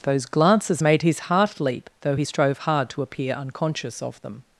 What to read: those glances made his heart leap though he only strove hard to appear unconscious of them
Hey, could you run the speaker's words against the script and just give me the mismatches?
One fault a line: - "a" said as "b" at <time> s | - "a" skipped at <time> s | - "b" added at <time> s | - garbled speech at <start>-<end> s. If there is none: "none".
- "only" skipped at 2.2 s